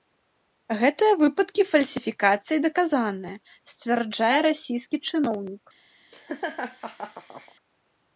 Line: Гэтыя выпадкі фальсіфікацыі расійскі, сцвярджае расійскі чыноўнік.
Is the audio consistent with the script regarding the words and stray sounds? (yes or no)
no